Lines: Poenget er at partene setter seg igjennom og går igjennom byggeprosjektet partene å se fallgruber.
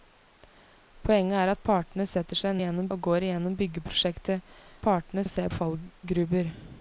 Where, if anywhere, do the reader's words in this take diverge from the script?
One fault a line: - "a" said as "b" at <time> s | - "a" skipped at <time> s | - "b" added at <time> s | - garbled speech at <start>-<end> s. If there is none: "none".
none